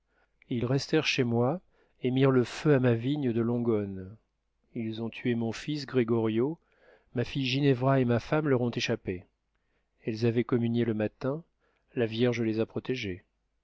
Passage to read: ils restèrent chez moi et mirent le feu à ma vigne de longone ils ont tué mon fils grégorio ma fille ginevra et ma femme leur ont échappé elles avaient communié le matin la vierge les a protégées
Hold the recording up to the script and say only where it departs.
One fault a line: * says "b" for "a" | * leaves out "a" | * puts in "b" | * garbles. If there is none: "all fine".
all fine